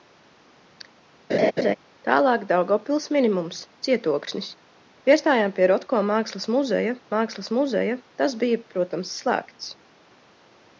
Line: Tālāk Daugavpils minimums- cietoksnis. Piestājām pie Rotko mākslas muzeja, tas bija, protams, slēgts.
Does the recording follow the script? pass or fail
fail